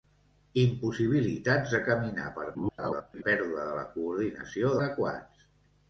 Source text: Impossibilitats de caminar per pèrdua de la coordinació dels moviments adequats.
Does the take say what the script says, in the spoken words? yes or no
no